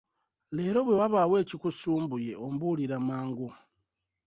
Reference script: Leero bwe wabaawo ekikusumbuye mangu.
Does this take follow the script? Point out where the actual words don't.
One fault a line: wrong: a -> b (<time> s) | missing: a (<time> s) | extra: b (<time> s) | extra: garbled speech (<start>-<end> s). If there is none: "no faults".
extra: ombuulira (2.5 s)